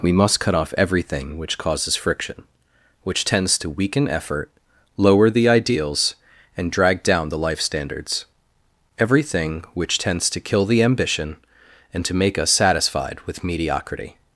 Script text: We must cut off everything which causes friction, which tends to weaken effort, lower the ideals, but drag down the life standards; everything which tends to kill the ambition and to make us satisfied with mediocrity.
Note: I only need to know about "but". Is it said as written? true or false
false